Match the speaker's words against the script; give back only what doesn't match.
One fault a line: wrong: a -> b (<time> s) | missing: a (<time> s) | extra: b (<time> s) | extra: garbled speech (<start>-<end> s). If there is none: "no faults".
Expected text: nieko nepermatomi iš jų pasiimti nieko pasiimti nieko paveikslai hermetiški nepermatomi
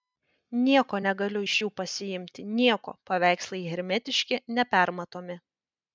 wrong: nepermatomi -> negaliu (1.1 s)
missing: pasiimti nieko (3.0 s)